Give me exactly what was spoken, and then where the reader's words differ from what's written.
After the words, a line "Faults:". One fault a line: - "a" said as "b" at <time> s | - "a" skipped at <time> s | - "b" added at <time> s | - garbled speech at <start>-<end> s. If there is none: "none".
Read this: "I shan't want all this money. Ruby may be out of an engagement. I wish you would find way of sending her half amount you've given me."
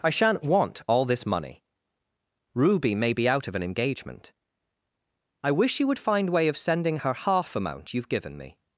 "I shan't want all this money. Ruby may be out of an engagement. I wish you would find way of sending her half amount you've given me."
Faults:
none